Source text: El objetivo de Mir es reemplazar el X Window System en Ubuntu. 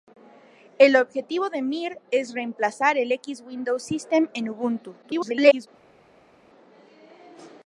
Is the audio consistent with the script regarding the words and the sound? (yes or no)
no